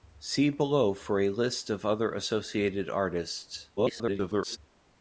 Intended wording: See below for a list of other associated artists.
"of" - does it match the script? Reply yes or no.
yes